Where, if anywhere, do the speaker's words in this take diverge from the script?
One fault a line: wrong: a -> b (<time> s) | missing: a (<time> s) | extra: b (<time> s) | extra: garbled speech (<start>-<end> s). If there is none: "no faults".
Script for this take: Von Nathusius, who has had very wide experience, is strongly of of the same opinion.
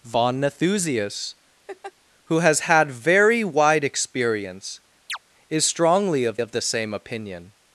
no faults